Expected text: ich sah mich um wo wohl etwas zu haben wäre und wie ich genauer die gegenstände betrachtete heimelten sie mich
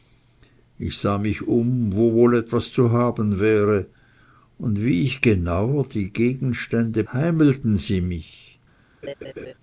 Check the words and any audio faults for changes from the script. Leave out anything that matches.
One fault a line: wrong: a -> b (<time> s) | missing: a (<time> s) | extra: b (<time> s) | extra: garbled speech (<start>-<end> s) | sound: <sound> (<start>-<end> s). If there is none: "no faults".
missing: betrachtete (7.0 s)
sound: laugh (9.0-9.5 s)